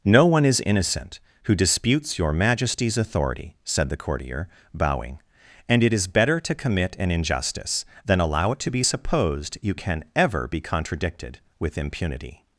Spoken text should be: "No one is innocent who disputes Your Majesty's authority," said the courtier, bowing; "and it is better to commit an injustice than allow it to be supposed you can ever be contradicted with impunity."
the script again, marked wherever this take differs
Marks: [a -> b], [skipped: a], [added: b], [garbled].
"No one is innocent who disputes Your Majesty's authority," said the courtier, bowing; "and it is better to commit an injustice than allow it to be supposed you can ever be contradicted with impunity."